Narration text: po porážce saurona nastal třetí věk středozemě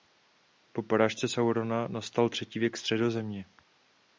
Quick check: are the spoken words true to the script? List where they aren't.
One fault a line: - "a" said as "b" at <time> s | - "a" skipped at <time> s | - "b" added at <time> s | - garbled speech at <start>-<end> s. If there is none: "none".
none